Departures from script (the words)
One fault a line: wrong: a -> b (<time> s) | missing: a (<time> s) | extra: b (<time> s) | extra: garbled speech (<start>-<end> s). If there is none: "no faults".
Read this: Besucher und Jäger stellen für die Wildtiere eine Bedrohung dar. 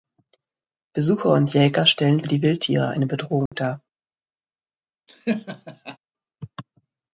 missing: für (2.2 s)